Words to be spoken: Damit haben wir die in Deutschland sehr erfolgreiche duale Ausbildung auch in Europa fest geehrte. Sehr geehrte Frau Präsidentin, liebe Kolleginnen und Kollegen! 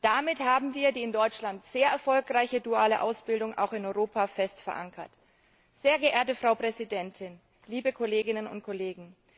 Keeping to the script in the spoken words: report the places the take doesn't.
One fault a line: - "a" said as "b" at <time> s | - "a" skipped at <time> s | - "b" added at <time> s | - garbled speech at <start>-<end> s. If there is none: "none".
- "geehrte" said as "verankert" at 4.6 s